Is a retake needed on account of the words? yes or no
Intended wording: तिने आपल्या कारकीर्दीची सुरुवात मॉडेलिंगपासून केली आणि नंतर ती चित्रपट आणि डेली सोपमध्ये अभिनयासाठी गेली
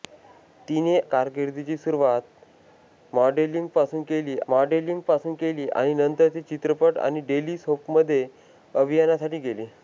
yes